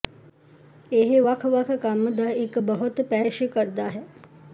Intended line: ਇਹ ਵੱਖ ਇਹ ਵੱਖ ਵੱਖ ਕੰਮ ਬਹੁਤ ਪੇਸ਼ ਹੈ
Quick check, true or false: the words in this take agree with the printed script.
false